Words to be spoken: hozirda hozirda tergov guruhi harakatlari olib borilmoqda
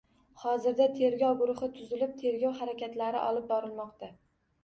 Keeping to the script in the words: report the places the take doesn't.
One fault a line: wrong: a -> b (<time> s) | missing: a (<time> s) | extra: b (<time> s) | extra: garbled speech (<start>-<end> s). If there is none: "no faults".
missing: hozirda (0.8 s)
extra: tuzilib tergov (1.8 s)